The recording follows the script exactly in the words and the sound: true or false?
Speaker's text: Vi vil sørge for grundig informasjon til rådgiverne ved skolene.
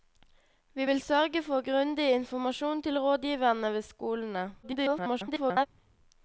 false